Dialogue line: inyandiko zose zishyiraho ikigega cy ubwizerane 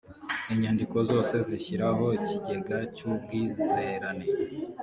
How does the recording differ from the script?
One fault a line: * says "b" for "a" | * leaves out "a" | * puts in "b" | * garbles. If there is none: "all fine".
all fine